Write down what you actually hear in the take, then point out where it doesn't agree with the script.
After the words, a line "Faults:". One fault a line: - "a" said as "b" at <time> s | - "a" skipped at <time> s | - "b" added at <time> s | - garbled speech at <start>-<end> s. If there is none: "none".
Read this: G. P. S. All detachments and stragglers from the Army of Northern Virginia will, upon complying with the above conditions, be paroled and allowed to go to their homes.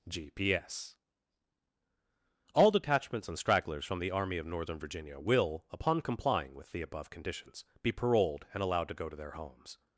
G. P. S. All detachments and stragglers from the Army of Northern Virginia will, upon complying with the above conditions, be paroled and allowed to go to their homes.
Faults:
none